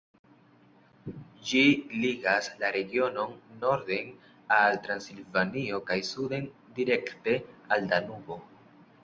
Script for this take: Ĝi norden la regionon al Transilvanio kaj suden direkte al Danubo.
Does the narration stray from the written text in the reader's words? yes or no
yes